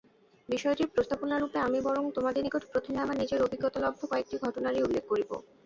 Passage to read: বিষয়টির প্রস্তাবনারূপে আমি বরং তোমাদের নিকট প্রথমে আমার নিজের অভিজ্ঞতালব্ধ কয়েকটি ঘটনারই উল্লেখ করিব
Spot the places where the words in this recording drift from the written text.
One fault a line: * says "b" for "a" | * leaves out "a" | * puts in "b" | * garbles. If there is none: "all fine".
all fine